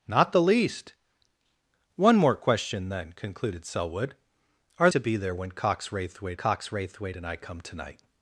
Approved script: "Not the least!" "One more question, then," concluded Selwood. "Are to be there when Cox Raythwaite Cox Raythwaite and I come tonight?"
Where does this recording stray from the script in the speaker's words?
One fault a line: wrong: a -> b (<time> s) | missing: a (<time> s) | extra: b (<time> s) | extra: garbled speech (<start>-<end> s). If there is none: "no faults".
no faults